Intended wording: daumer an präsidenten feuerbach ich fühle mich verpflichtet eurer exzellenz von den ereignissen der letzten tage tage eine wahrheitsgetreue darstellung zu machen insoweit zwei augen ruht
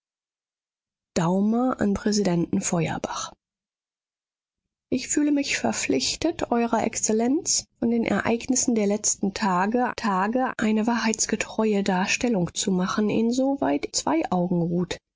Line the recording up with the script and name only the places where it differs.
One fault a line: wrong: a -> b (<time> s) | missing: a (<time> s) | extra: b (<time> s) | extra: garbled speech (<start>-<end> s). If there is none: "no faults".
no faults